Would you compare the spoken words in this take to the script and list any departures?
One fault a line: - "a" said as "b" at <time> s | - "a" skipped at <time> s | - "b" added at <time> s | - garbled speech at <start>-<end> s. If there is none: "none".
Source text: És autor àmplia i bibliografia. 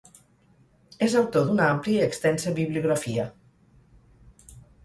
- "d'una" added at 1.5 s
- "extensa" added at 2.1 s